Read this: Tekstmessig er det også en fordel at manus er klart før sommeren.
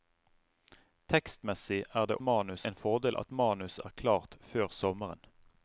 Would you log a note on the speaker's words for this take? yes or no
yes